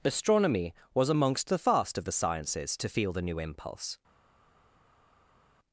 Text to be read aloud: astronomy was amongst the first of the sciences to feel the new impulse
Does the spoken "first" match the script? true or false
false